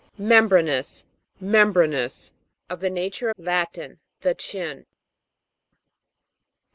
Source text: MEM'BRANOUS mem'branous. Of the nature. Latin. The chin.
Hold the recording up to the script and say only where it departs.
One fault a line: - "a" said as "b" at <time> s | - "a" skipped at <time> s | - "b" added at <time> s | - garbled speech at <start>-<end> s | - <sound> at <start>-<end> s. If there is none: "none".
none